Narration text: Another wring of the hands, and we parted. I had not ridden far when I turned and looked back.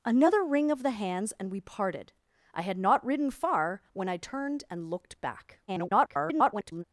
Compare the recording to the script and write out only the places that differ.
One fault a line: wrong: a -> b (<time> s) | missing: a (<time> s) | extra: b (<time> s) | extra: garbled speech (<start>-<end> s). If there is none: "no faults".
extra: garbled speech (5.7-6.8 s)